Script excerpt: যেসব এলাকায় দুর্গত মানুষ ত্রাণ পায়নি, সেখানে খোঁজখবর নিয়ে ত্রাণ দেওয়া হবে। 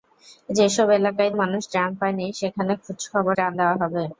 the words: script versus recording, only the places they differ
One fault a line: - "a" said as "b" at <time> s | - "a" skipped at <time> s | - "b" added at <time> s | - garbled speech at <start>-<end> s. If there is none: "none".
- "দুর্গত" skipped at 1.3 s
- "নিয়ে" skipped at 3.3 s